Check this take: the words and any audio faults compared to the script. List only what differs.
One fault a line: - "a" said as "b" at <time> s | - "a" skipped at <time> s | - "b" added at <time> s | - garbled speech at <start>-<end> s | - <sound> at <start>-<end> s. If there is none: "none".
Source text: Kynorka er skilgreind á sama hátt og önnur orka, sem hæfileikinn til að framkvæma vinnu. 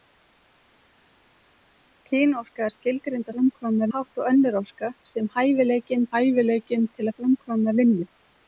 - "sama" said as "framkvæma" at 3.4 s
- "hæfileikinn" added at 6.1 s